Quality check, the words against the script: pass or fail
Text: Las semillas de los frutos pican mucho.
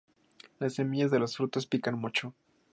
pass